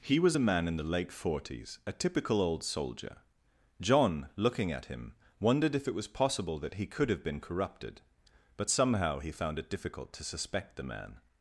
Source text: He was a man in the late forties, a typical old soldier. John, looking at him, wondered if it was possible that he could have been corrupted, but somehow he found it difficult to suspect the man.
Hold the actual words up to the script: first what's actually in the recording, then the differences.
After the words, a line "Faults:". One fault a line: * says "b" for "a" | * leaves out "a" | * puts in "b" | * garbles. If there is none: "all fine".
He was a man in the late forties, a typical old soldier. John, looking at him, wondered if it was possible that he could have been corrupted, but somehow he found it difficult to suspect the man.
Faults:
all fine